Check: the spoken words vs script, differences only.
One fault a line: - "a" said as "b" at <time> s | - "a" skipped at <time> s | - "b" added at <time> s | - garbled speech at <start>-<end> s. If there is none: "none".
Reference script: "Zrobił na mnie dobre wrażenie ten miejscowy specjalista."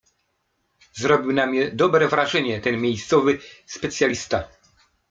none